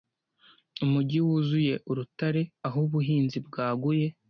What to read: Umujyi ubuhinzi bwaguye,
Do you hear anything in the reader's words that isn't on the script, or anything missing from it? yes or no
yes